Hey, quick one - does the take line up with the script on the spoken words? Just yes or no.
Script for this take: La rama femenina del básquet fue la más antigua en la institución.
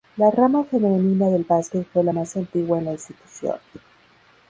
yes